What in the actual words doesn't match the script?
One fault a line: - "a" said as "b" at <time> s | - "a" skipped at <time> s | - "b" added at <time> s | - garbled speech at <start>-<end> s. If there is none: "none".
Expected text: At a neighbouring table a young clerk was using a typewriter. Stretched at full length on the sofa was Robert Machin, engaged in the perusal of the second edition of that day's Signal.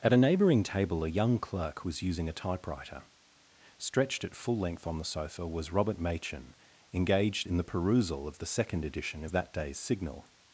none